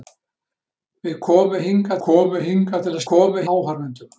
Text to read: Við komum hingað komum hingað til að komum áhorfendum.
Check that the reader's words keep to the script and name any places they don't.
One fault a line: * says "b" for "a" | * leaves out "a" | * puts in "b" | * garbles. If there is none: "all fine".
all fine